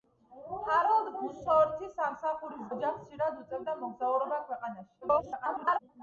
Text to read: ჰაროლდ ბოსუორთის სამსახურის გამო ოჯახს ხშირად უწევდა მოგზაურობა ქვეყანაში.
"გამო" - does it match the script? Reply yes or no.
no